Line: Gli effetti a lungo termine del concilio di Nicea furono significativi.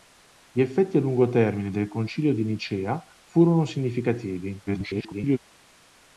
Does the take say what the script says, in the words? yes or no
no